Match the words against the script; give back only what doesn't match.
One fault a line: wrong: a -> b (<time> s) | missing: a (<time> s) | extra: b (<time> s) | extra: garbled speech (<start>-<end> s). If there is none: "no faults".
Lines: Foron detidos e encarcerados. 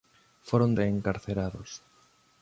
missing: detidos (0.7 s)